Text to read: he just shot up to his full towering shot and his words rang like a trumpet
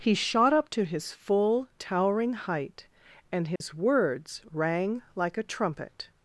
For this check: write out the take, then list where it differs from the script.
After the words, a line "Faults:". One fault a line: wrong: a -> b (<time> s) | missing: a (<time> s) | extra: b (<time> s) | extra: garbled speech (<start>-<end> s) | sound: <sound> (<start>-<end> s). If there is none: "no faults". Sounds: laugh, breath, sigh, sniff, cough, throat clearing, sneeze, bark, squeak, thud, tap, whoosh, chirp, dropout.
he shot up to his full towering height and his words rang like a trumpet
Faults:
missing: just (0.1 s)
wrong: shot -> height (2.3 s)
sound: dropout (3.6-3.6 s)